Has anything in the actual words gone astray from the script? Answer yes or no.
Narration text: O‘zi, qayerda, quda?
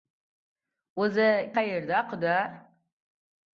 no